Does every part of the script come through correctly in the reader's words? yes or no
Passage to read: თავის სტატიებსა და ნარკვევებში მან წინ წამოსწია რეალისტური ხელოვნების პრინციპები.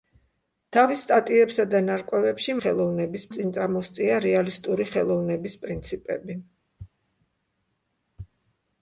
no